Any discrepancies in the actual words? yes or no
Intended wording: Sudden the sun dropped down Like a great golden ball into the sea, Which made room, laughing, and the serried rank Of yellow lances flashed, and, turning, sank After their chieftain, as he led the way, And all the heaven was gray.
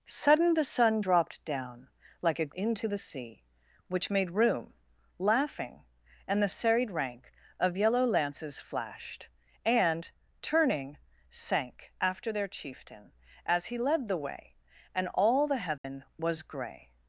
yes